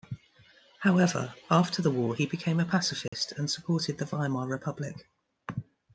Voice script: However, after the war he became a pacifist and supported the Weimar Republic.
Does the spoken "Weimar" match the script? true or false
true